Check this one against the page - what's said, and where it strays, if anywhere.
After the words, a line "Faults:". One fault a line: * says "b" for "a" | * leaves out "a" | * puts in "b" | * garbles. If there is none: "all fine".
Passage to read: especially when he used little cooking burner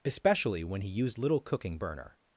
especially when he used little cooking burner
Faults:
all fine